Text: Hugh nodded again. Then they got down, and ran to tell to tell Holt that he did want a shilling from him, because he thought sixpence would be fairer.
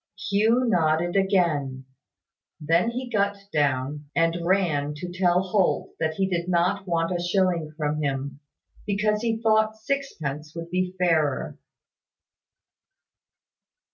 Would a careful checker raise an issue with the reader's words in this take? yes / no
yes